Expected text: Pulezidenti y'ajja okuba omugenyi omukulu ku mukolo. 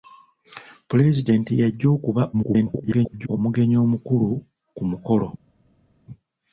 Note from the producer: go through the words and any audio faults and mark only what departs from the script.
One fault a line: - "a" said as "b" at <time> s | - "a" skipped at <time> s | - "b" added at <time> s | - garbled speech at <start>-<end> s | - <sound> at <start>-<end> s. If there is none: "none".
- garbled speech at 2.3-3.3 s